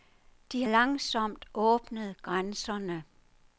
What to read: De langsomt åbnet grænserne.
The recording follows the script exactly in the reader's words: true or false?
true